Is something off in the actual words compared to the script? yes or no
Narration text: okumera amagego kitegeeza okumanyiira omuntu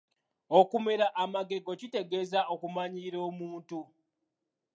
no